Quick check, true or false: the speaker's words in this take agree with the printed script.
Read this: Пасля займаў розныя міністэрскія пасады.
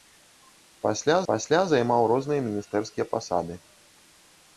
false